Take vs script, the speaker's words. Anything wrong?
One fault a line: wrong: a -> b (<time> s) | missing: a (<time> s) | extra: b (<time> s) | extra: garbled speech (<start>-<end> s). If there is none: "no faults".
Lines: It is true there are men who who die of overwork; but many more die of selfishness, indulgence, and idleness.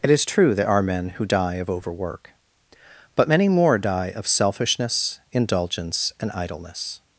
missing: who (1.2 s)